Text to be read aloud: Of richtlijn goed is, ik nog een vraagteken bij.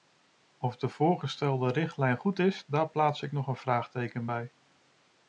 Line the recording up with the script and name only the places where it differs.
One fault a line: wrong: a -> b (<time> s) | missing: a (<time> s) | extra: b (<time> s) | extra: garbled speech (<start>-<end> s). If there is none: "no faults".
extra: de voorgestelde (0.8 s)
extra: daar plaats (2.7 s)